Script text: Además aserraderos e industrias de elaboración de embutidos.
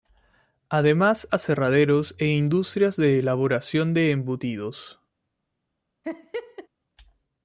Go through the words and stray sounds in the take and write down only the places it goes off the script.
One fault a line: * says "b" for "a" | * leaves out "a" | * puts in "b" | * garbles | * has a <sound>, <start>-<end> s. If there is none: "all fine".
* has a laugh, 6.0-6.7 s